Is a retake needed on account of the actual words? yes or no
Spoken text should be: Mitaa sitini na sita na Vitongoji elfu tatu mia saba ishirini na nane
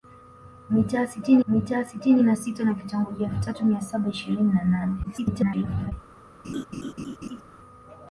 yes